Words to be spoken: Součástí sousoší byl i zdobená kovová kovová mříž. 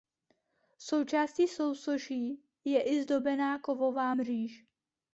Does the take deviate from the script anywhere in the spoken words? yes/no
yes